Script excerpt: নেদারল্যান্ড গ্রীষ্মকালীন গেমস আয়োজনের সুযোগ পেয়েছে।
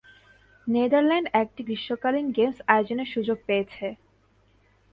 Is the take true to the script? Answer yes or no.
no